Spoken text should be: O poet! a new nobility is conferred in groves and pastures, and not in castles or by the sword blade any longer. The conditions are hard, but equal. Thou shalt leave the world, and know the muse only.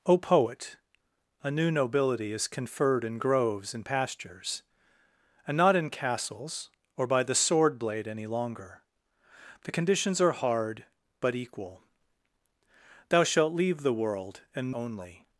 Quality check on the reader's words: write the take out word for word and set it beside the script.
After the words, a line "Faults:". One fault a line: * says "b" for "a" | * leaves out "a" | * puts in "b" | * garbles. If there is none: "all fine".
O poet! a new nobility is conferred in groves and pastures, and not in castles or by the sword blade any longer. The conditions are hard, but equal. Thou shalt leave the world, and only.
Faults:
* leaves out "know the muse"